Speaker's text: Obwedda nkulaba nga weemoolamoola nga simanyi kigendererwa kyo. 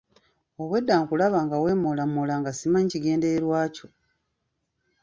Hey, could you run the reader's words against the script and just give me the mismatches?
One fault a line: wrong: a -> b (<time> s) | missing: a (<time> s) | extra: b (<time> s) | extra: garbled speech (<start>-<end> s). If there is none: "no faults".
no faults